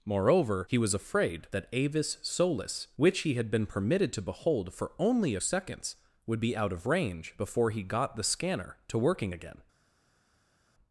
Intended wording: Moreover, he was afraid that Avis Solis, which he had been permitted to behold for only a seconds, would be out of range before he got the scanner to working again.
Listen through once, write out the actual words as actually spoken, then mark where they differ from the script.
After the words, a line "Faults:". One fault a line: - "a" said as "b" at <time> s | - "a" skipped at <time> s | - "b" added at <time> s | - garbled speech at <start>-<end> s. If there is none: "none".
Moreover, he was afraid that Avis Solis, which he had been permitted to behold for only a seconds, would be out of range before he got the scanner to working again.
Faults:
none